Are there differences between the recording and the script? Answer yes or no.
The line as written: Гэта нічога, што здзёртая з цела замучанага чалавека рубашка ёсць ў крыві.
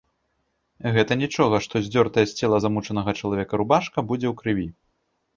yes